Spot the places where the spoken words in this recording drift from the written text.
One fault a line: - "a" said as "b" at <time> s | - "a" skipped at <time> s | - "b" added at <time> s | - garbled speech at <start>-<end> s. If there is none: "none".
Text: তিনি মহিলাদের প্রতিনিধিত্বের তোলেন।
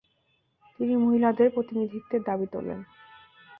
- "দাবি" added at 2.2 s